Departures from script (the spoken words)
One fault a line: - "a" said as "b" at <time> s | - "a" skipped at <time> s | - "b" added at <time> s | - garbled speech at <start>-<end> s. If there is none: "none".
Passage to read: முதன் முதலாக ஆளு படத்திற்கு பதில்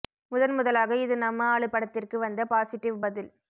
- "இது நம்ம" added at 1.0 s
- "வந்த பாசிட்டிவ்" added at 2.2 s